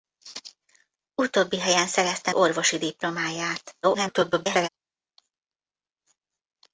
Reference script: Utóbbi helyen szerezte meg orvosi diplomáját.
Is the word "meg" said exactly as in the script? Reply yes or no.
no